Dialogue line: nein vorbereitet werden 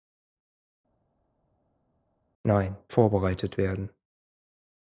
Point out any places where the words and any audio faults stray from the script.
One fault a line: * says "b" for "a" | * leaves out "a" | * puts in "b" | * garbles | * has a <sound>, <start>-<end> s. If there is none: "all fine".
all fine